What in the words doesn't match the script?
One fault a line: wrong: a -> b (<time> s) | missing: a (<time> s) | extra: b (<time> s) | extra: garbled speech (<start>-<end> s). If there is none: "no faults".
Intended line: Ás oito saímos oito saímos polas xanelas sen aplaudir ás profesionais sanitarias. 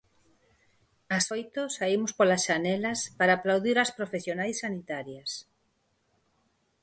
missing: oito saímos (2.1 s)
wrong: sen -> para (3.2 s)